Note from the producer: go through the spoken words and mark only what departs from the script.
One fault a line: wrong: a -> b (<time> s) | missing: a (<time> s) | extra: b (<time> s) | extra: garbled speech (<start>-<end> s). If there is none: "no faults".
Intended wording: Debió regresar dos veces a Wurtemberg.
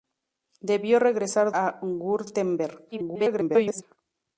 missing: dos veces (1.5 s)
extra: garbled speech (2.9-3.8 s)